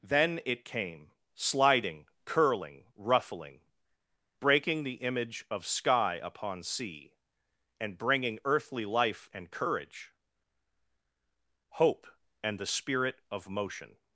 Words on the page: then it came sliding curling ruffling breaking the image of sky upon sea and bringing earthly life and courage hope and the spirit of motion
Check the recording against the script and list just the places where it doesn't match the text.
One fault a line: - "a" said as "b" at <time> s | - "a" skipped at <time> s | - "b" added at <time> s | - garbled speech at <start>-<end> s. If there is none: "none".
none